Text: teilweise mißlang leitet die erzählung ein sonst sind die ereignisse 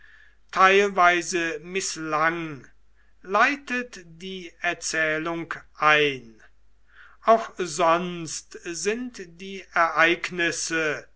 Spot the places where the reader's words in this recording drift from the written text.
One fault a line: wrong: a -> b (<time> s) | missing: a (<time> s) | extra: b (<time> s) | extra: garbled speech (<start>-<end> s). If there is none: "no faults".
extra: auch (7.2 s)